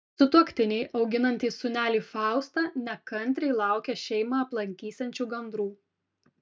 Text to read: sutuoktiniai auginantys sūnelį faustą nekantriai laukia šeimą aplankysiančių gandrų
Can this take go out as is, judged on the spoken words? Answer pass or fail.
pass